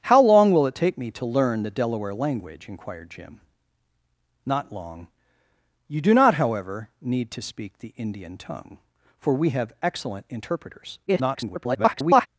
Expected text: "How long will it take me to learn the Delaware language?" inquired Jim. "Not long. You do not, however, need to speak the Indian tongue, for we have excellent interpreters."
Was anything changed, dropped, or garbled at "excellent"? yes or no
no